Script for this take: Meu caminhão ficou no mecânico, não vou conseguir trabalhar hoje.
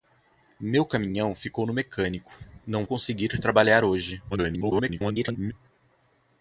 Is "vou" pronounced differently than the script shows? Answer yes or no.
yes